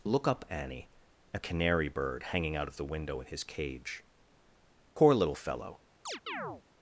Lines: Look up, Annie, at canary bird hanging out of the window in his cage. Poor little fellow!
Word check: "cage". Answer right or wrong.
right